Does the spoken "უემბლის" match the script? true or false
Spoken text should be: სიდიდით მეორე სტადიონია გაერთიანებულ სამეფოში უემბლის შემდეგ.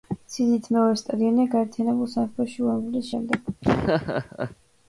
true